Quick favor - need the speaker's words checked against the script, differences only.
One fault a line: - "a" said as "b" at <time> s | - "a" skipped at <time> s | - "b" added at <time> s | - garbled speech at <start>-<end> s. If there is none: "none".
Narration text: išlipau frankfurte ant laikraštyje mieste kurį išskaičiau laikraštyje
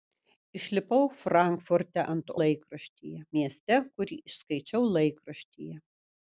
none